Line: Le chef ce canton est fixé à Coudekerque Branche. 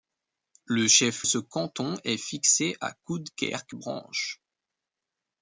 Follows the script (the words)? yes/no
yes